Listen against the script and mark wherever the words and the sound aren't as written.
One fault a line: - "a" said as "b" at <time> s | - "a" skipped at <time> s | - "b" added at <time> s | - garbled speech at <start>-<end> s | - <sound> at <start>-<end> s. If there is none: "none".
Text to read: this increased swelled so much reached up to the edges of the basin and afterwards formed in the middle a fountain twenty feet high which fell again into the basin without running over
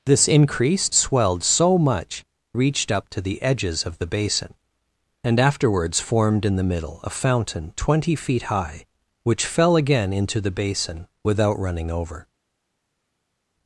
none